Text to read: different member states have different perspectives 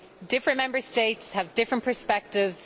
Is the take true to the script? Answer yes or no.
yes